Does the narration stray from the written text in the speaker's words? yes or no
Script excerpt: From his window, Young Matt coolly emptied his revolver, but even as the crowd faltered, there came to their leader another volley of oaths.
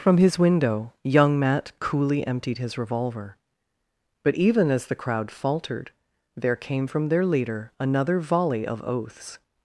yes